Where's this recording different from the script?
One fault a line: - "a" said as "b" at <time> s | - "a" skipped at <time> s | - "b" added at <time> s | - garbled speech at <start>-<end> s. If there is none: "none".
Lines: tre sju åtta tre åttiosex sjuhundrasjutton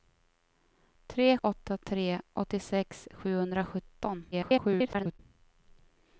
- "sju" skipped at 1.4 s
- garbled speech at 4.3-5.2 s